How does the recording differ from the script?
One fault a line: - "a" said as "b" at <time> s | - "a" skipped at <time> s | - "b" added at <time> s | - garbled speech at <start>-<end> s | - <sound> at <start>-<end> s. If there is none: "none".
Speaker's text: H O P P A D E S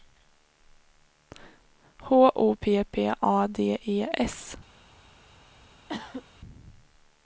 - cough at 5.9-6.3 s